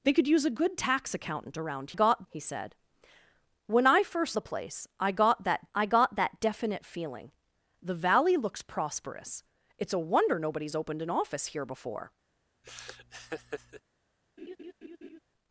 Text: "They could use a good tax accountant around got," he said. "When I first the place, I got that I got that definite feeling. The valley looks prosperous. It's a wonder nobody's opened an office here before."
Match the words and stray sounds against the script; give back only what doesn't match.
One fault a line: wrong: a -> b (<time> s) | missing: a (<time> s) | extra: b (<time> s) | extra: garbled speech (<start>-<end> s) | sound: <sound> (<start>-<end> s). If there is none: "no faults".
sound: laugh (12.6-13.8 s)
sound: laugh (14.4-15.2 s)